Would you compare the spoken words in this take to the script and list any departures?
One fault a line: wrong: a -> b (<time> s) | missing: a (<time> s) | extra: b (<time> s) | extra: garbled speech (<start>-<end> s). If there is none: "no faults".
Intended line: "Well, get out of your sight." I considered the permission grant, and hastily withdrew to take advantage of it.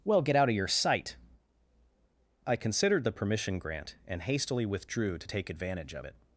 no faults